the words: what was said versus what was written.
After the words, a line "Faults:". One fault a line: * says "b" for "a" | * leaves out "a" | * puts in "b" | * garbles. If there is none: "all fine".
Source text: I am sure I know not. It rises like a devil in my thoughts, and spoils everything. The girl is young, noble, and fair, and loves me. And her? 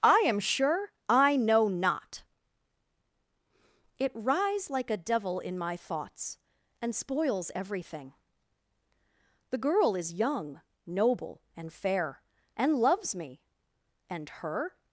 I am sure I know not. It rise like a devil in my thoughts, and spoils everything. The girl is young, noble, and fair, and loves me. And her?
Faults:
* says "rise" for "rises"